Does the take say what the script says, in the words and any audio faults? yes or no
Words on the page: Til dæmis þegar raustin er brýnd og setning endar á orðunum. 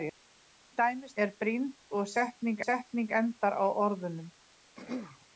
no